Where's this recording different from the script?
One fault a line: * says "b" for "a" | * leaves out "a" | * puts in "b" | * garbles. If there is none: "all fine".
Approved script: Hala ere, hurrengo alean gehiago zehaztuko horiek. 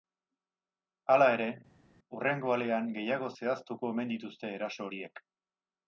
* puts in "omen dituzte eraso"